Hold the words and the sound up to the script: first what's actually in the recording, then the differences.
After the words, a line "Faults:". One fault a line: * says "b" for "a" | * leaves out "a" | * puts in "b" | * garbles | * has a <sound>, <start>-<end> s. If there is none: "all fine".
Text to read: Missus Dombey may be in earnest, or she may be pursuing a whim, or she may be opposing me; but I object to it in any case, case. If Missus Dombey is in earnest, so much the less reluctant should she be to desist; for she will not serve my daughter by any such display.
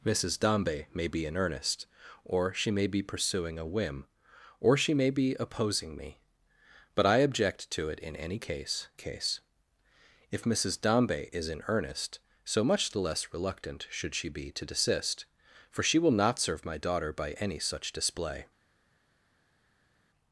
Missus Dombey may be in earnest, or she may be pursuing a whim, or she may be opposing me; but I object to it in any case, case. If Missus Dombey is in earnest, so much the less reluctant should she be to desist; for she will not serve my daughter by any such display.
Faults:
all fine